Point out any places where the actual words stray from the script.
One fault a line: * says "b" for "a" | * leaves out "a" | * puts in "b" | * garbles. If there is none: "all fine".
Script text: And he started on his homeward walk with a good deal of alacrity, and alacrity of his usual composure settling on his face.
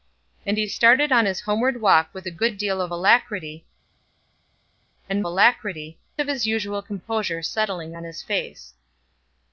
all fine